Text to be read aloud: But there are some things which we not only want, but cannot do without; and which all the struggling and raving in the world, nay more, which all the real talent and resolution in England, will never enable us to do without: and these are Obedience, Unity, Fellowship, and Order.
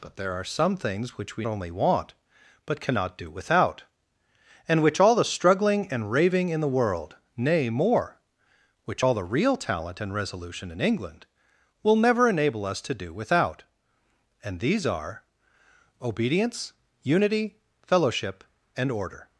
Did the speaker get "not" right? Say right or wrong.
wrong